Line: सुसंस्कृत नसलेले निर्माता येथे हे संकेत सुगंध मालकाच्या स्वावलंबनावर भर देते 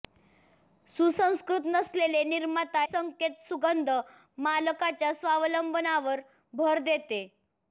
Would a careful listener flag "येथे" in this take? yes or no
yes